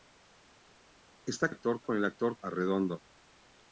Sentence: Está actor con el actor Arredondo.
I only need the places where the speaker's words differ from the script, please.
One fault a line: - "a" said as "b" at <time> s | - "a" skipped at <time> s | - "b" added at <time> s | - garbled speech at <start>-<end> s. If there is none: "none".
none